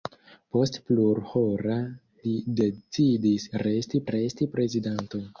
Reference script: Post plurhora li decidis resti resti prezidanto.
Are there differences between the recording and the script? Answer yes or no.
no